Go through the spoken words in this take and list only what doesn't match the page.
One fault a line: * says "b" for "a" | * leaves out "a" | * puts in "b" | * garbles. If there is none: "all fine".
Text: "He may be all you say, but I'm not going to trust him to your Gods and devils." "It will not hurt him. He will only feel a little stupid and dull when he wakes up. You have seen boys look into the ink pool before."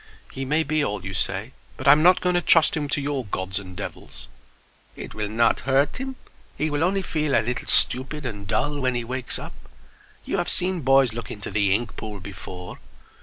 all fine